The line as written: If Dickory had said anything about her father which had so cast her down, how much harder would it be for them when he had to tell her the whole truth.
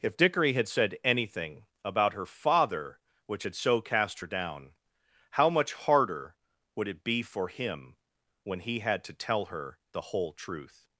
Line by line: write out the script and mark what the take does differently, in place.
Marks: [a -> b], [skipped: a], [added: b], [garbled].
If Dickory had said anything about her father which had so cast her down, how much harder would it be for [them -> him] when he had to tell her the whole truth.